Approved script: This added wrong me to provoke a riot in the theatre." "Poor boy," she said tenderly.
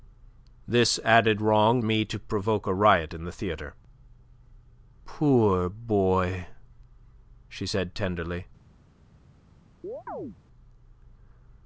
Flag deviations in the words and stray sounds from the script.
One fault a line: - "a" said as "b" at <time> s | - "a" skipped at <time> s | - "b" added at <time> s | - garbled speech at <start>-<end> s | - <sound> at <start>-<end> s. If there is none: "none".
- chirp at 9.8-10.4 s